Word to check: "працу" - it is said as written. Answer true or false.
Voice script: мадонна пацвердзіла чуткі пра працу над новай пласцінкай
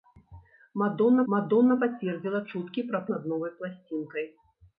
false